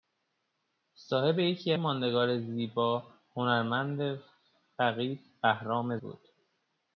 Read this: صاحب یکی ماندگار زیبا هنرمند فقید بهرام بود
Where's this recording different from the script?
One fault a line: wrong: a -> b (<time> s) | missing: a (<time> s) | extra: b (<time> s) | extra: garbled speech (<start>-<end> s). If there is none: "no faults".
no faults